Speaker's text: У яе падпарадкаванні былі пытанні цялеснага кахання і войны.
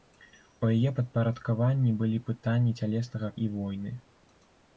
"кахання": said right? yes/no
no